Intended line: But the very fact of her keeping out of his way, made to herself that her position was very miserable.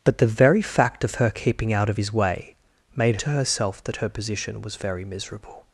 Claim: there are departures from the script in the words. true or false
false